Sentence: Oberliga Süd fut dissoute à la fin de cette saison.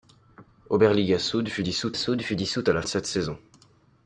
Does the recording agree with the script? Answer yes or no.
no